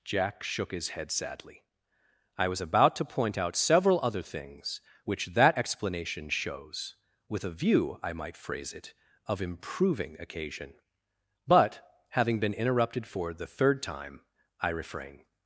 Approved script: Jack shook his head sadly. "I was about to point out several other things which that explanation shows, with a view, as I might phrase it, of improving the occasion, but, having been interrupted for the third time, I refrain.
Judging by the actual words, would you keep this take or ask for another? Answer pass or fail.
fail